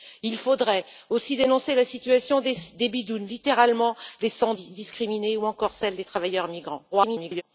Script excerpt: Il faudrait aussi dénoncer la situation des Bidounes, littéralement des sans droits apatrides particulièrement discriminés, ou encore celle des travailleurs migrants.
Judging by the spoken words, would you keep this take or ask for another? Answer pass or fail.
fail